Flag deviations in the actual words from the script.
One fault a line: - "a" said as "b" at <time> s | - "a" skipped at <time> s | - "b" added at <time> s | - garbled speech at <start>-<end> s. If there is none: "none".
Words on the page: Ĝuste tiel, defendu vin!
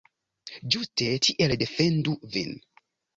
none